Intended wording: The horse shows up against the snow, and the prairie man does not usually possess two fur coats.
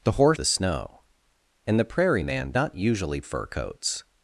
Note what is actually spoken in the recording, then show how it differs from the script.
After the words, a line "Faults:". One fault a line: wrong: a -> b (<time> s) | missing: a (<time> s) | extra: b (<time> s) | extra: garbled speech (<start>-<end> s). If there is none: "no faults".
The horse the snow, and the prairie man not usually fur coats.
Faults:
missing: shows up against (0.4 s)
missing: does (2.5 s)
missing: possess two (3.2 s)